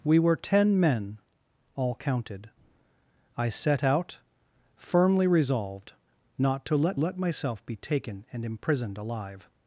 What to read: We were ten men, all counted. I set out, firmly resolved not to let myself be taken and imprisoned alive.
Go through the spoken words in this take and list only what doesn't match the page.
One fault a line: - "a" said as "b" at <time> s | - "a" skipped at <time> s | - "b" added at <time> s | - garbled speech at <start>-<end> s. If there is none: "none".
- "let" added at 6.9 s